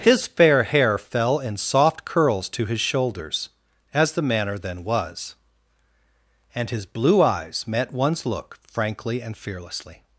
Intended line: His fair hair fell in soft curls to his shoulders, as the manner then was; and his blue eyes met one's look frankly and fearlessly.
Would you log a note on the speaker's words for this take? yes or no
no